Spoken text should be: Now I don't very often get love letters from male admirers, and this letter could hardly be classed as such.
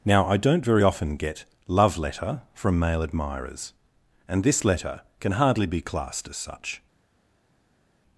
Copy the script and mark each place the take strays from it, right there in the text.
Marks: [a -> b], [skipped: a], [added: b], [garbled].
Now I don't very often get love [letters -> letter] from male admirers, and this letter [could -> can] hardly be classed as such.